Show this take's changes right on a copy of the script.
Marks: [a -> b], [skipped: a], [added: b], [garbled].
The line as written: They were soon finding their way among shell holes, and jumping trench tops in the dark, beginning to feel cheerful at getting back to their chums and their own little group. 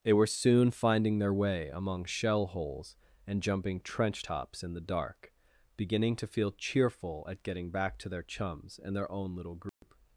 They were soon finding their way among shell holes, and jumping trench tops in the dark, beginning to feel cheerful at getting back to their chums and their own little group.